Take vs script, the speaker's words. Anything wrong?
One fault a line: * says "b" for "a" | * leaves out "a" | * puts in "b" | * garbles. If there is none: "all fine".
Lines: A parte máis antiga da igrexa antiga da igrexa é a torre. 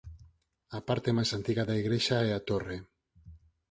* leaves out "antiga da igrexa"